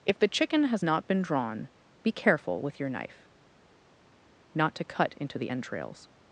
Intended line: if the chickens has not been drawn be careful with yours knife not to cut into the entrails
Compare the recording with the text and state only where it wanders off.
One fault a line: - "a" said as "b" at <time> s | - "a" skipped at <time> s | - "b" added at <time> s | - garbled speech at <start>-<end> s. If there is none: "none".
- "chickens" said as "chicken" at 0.3 s
- "yours" said as "your" at 2.8 s